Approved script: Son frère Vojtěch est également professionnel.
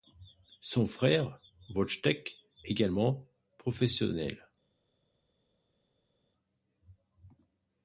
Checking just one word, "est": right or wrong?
wrong